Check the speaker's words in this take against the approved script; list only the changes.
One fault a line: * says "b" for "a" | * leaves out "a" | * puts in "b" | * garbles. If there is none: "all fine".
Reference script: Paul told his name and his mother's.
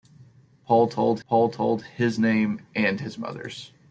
* puts in "paul told"